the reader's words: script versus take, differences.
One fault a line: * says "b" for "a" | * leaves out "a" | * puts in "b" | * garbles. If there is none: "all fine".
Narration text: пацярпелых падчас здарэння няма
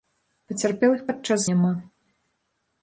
* leaves out "здарэння"